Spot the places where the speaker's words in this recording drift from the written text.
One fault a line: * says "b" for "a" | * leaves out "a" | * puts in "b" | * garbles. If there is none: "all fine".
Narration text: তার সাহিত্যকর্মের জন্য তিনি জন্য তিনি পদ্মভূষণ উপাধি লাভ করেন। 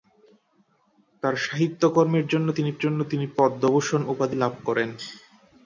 all fine